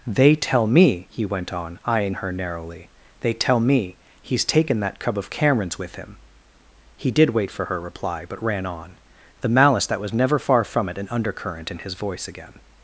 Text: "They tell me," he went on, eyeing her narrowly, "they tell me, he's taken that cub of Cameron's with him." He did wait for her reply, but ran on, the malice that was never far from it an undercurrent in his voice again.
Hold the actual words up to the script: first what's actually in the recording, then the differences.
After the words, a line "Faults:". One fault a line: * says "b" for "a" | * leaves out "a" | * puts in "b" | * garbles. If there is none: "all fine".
"They tell me," he went on, eyeing her narrowly, "they tell me, he's taken that cub of Cameron's with him." He did wait for her reply, but ran on, the malice that was never far from it an undercurrent in his voice again.
Faults:
all fine